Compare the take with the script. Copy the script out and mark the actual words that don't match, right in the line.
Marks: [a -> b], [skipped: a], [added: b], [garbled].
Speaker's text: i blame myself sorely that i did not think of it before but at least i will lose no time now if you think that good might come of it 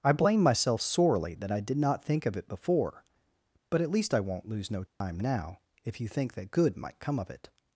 i blame myself sorely that i did not think of it before but at least i [will -> won't] lose no time now if you think that good might come of it